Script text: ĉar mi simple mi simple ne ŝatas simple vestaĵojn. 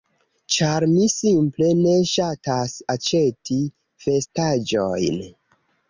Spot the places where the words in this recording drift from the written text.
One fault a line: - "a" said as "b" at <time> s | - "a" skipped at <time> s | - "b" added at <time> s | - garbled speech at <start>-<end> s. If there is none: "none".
- "mi simple" skipped at 1.7 s
- "simple" said as "aĉeti" at 3.0 s